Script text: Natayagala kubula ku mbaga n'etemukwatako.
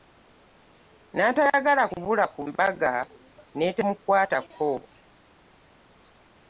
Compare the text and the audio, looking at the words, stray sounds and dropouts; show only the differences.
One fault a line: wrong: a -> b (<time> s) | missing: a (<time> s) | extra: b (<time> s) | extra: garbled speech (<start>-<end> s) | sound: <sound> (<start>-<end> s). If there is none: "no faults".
no faults